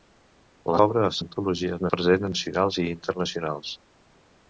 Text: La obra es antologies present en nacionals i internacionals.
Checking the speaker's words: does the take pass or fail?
pass